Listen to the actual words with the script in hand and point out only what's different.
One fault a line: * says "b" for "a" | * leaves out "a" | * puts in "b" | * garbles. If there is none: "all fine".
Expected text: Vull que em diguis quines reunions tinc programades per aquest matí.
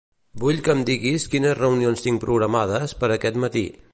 all fine